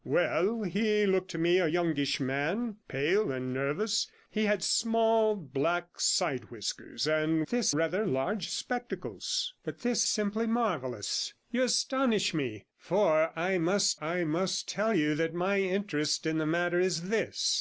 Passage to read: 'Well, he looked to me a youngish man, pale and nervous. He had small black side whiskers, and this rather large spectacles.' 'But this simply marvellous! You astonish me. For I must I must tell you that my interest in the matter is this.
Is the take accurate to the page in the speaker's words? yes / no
yes